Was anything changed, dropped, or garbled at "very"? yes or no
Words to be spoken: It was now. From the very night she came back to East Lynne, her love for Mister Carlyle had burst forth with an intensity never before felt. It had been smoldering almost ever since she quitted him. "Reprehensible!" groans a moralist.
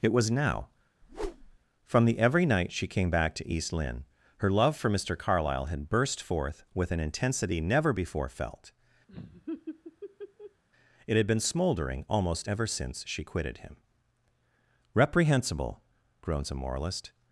yes